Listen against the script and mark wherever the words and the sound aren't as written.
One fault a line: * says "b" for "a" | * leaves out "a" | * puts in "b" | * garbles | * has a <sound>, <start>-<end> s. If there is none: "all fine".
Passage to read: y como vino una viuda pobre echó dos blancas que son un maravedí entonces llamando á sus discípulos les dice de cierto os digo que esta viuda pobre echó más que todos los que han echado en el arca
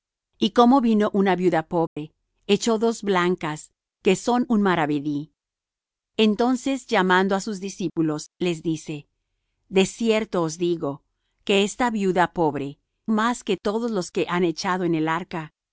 * has a dropout, 1.9-2.0 s
* leaves out "echó"